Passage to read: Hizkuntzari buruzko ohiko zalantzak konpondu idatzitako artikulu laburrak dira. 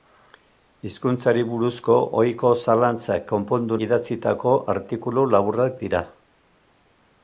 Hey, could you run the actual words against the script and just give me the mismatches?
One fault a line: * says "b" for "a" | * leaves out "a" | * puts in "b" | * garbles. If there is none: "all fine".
all fine